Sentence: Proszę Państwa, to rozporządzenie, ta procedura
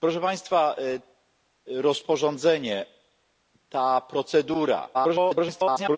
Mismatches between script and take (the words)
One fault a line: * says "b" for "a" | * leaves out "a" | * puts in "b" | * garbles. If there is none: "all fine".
* leaves out "to"
* garbles